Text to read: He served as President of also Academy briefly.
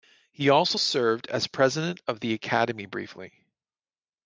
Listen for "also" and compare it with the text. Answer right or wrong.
wrong